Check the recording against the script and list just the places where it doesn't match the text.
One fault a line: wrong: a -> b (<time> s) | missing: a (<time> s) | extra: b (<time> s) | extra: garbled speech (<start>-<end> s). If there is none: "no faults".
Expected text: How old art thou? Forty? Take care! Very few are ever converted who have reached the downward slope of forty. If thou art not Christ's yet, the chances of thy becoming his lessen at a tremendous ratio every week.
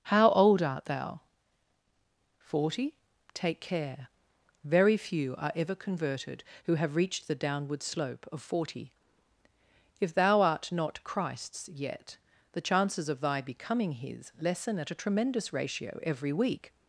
no faults